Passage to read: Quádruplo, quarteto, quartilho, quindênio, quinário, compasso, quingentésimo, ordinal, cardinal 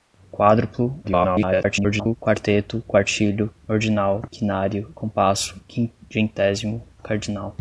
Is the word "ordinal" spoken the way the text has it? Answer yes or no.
no